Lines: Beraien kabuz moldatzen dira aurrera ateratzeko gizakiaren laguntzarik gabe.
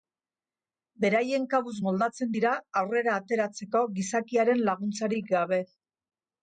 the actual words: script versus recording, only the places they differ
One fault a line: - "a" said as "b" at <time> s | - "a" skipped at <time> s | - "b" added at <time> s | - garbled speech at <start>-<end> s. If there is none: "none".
none